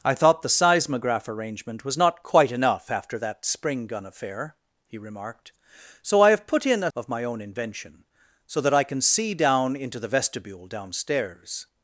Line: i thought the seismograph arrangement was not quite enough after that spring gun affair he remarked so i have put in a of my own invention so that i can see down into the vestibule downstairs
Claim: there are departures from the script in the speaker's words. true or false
false